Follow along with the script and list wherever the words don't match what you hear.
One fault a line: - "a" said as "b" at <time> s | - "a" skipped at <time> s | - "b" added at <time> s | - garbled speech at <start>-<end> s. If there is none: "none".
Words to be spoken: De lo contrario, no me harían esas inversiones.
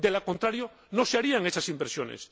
- "me" said as "se" at 1.1 s